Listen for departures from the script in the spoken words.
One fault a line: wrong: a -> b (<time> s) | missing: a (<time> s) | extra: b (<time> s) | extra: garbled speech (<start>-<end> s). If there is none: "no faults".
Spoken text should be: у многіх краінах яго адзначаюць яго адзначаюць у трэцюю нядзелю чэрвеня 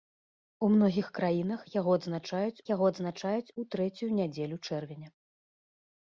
no faults